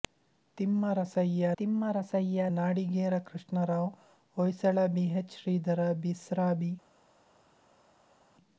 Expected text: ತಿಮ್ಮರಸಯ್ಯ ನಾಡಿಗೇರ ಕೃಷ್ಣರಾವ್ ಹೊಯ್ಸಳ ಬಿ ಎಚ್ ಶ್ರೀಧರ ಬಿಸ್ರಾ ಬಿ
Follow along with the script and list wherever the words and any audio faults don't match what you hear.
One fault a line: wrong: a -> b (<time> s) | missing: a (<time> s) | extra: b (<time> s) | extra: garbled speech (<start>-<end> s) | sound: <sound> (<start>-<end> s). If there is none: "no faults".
extra: ತಿಮ್ಮರಸಯ್ಯ (1.6 s)